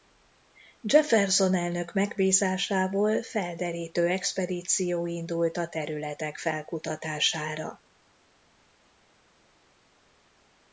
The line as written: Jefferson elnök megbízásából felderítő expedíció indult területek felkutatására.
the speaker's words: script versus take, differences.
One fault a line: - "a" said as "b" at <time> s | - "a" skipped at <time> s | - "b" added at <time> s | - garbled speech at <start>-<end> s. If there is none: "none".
- "a" added at 5.6 s